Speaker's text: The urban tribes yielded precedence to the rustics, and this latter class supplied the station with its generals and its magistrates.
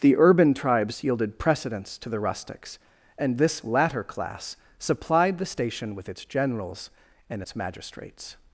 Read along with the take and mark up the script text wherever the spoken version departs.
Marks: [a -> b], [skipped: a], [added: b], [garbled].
The urban tribes yielded precedence to the rustics, and this latter class supplied the station with its generals and its magistrates.